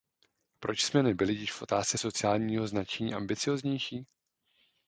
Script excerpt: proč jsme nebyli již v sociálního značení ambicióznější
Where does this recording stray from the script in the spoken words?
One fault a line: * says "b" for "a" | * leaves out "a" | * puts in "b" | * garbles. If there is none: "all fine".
* puts in "otázce"